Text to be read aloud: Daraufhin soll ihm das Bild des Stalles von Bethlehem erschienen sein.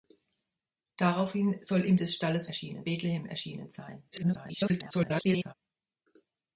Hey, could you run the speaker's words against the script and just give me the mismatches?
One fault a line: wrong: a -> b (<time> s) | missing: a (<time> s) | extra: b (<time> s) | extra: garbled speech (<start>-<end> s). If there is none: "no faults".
missing: das Bild (1.9 s)
wrong: von -> erschienen (2.4 s)
extra: garbled speech (4.1-5.5 s)